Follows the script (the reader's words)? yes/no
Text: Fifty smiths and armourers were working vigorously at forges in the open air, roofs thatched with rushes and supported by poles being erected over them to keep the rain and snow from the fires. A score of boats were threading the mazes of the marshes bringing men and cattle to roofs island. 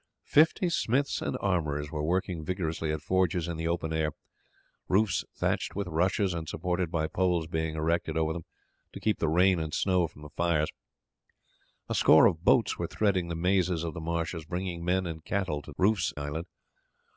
yes